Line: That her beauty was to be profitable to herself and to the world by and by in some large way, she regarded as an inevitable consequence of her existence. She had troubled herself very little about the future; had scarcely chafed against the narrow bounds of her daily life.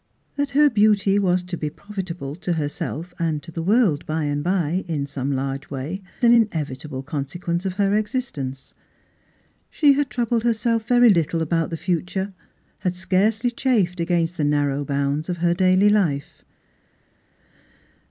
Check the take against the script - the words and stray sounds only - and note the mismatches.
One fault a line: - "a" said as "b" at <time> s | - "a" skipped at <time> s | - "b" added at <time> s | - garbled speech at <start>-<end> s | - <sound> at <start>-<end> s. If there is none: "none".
- "she regarded as" skipped at 6.0 s